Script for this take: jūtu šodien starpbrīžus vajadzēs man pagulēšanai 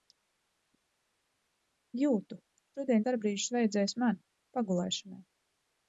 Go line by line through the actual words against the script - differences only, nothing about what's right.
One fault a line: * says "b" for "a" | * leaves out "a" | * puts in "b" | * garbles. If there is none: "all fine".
all fine